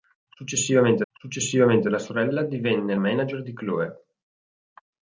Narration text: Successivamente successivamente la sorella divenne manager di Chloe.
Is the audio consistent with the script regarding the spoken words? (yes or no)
yes